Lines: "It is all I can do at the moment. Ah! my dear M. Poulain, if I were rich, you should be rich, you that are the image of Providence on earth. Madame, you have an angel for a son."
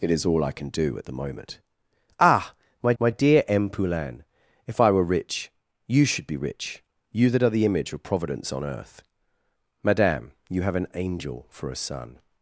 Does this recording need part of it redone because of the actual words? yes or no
yes